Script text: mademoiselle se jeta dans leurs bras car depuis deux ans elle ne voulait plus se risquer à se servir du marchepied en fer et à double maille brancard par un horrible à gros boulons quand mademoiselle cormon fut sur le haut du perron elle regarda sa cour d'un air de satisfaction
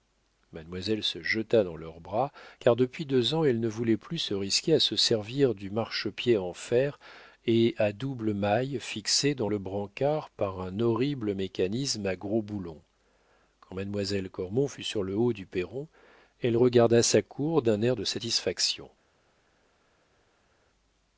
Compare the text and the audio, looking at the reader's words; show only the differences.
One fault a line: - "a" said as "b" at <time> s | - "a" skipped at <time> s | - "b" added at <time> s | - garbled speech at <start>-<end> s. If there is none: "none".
- "fixé dans le" added at 8.8 s
- "mécanisme" added at 11.3 s